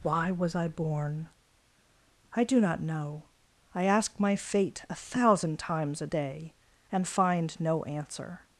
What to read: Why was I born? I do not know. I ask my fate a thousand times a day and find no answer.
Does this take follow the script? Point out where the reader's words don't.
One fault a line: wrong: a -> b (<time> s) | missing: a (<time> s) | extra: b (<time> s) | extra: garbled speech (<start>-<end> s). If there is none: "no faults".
no faults